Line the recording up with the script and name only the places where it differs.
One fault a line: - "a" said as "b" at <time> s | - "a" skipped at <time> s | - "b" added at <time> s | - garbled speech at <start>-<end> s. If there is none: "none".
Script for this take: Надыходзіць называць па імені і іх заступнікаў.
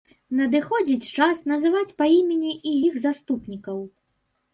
- "час" added at 1.2 s